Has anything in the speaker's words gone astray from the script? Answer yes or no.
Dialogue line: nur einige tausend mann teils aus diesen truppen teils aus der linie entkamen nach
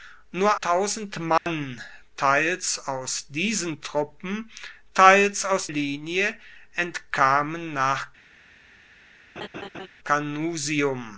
yes